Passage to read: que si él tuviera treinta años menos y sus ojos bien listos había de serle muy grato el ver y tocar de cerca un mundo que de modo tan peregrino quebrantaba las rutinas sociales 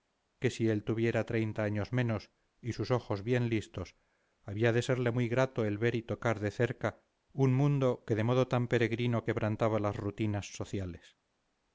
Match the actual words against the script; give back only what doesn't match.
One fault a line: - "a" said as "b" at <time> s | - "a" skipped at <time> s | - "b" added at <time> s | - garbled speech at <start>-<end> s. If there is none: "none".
none